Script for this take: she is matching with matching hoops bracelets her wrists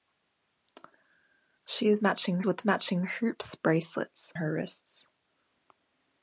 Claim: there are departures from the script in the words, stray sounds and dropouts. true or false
false